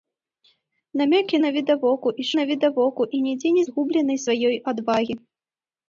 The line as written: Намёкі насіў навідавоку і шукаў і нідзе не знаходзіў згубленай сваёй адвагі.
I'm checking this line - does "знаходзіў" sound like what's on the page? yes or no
no